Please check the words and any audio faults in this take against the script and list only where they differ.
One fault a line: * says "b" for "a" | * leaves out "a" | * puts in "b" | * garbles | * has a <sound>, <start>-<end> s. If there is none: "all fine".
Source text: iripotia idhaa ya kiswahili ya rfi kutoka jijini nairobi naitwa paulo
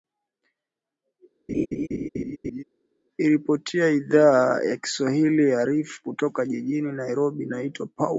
* has a laugh, 1.5-2.6 s